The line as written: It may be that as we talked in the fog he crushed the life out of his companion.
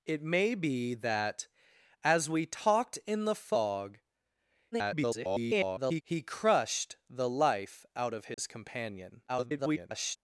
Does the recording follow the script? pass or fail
fail